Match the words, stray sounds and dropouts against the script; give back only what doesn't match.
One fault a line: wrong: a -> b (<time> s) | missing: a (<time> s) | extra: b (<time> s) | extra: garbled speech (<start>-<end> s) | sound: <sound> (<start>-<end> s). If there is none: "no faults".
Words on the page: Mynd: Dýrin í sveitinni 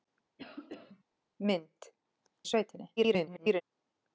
sound: cough (0.4-1.0 s)
missing: Dýrin (1.9 s)
extra: garbled speech (3.0-3.6 s)